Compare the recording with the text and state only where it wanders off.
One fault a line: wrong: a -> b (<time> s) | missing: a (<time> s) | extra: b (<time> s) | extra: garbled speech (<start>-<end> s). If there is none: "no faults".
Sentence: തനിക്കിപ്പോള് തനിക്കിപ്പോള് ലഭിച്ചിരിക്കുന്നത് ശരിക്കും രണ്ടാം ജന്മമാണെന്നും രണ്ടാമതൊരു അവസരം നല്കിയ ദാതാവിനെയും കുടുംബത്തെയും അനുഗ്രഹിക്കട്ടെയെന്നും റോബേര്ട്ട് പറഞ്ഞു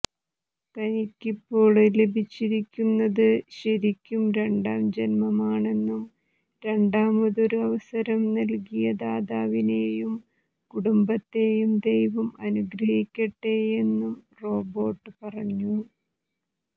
missing: തനിക്കിപ്പോള് (1.8 s)
extra: ദൈവം (11.9 s)